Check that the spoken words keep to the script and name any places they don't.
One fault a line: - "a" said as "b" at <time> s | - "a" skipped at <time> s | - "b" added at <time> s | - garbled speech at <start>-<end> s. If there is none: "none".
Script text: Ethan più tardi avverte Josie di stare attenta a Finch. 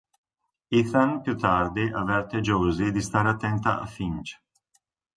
none